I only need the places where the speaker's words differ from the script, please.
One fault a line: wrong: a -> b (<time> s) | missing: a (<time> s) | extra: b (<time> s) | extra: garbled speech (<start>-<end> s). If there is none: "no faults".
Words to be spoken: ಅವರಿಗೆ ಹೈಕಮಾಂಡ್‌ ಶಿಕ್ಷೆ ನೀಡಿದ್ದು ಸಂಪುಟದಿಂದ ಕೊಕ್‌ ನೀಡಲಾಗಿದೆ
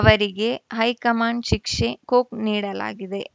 missing: ನೀಡಿದ್ದು ಸಂಪುಟದಿಂದ (1.9 s)